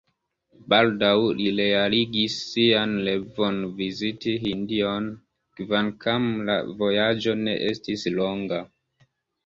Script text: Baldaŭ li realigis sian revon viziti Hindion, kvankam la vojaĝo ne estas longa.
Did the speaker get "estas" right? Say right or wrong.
wrong